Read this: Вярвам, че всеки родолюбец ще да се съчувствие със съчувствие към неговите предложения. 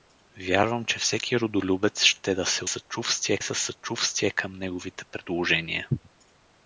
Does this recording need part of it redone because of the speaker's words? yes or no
no